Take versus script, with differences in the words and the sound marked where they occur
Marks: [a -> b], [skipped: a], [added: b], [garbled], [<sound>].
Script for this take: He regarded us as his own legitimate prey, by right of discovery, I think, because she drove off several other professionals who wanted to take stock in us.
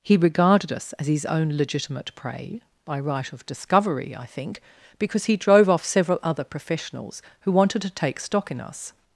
He regarded us as his own legitimate prey, by right of discovery, I think, because [she -> he] drove off several other professionals who wanted to take stock in us.